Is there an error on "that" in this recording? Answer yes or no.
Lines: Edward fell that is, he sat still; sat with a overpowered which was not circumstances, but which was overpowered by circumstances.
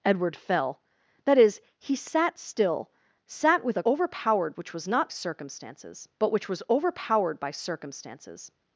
no